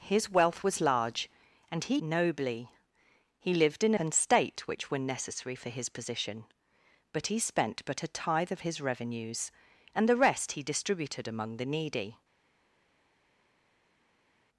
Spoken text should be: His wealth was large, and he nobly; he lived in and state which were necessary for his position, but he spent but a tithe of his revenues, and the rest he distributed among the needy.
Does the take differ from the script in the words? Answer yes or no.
no